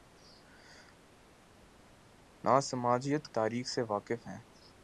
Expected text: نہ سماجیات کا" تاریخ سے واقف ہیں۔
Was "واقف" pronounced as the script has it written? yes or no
yes